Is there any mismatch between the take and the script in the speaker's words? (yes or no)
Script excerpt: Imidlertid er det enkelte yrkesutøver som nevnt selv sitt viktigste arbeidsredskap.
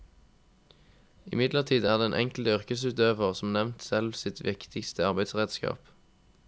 yes